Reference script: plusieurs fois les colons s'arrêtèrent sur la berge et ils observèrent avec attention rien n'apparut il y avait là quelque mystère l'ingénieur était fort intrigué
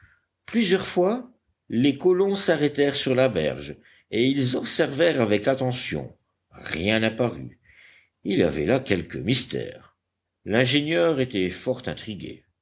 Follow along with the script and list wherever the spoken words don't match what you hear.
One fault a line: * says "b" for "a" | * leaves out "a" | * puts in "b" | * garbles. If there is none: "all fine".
all fine